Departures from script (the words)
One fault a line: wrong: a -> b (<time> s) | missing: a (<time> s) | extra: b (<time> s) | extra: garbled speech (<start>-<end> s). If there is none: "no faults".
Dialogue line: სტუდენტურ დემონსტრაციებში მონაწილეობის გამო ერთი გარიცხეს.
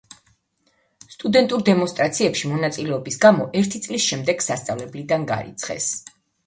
extra: წლის შემდეგ სასწავლებლიდან (3.9 s)